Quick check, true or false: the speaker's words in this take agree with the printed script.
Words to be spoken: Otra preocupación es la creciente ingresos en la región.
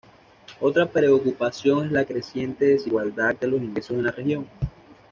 false